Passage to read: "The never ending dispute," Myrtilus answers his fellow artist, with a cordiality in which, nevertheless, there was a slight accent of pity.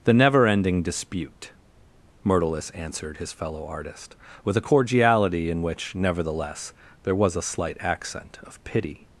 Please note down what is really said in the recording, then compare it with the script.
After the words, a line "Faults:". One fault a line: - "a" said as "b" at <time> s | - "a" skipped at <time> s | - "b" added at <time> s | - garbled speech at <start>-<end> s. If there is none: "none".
"The never ending dispute," Myrtilus answered his fellow artist, with a cordiality in which, nevertheless, there was a slight accent of pity.
Faults:
- "answers" said as "answered" at 2.7 s